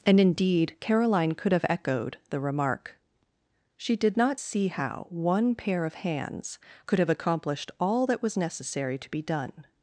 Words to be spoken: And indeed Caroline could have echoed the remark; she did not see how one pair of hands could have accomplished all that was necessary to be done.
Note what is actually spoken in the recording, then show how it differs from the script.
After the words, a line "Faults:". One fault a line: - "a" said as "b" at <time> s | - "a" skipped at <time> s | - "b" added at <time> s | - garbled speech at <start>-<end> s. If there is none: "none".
And indeed Caroline could have echoed the remark; she did not see how one pair of hands could have accomplished all that was necessary to be done.
Faults:
none